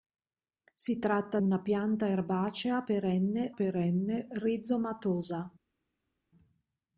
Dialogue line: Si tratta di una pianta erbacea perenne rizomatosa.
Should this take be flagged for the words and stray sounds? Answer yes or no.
yes